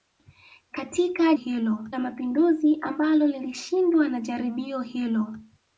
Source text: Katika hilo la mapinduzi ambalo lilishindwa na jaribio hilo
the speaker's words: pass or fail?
pass